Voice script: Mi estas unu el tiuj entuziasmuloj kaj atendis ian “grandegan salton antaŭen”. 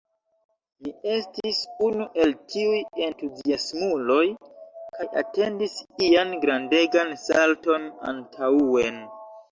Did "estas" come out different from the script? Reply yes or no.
yes